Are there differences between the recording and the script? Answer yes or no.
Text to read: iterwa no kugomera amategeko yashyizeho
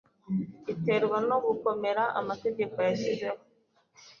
no